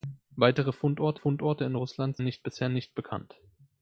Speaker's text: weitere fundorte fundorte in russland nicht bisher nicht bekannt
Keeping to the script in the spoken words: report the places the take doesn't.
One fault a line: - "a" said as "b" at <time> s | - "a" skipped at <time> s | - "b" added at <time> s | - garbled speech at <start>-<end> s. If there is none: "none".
none